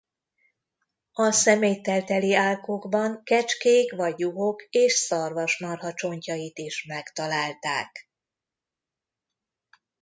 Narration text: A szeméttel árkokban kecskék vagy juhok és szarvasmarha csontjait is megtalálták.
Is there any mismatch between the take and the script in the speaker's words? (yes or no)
yes